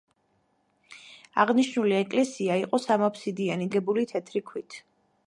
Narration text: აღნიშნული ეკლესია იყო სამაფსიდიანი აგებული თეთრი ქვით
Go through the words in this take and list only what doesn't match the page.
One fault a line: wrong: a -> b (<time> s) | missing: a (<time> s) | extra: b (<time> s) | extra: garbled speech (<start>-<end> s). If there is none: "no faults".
no faults